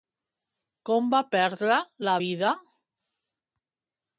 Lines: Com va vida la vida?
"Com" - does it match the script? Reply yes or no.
yes